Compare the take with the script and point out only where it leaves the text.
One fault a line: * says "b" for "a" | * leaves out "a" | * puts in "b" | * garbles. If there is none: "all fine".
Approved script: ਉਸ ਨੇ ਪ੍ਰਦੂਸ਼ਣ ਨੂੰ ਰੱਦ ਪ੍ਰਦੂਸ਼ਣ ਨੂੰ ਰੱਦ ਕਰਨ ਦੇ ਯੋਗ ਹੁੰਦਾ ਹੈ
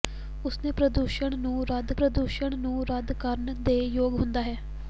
all fine